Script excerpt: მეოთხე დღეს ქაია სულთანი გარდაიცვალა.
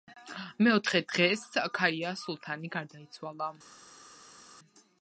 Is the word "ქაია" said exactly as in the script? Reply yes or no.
yes